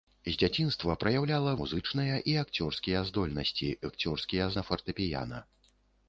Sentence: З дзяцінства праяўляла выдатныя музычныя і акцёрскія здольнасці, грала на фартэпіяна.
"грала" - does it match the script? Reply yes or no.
no